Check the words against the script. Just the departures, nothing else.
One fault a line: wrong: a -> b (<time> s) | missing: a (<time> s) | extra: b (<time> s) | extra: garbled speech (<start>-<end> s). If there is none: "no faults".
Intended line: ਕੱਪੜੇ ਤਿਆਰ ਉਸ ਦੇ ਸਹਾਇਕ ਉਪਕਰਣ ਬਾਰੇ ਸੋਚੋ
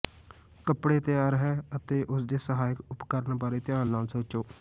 extra: ਹੈ ਅਤੇ (1.4 s)
extra: ਧਿਆਨ ਨਾਲ (3.6 s)